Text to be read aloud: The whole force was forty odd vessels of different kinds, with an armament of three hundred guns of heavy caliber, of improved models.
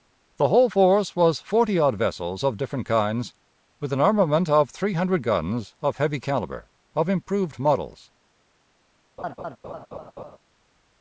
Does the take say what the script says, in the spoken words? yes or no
yes